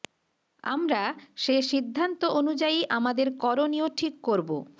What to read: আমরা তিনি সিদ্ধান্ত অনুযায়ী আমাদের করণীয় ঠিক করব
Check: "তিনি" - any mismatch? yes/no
yes